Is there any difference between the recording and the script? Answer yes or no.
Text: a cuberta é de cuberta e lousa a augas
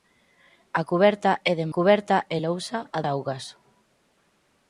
no